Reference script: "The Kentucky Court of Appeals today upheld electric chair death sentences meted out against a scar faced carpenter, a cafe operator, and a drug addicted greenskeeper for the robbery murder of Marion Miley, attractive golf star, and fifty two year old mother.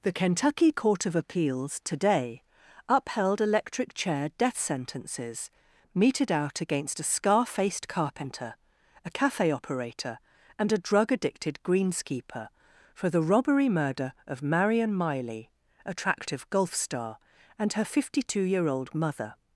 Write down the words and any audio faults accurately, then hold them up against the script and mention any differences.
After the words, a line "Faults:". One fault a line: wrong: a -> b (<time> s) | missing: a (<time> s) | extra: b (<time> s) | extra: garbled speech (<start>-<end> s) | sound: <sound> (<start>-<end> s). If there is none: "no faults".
"The Kentucky Court of Appeals today upheld electric chair death sentences meted out against a scar faced carpenter, a cafe operator, and a drug addicted greenskeeper for the robbery murder of Marion Miley, attractive golf star, and her fifty two year old mother.
Faults:
extra: her (17.7 s)